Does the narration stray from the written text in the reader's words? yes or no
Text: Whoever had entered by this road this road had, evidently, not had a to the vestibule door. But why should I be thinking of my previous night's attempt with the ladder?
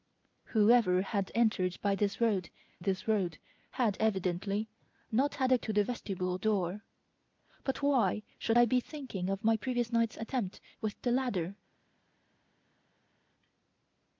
no